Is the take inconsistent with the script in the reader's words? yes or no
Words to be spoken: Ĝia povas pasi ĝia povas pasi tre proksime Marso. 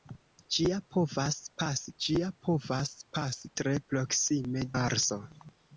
no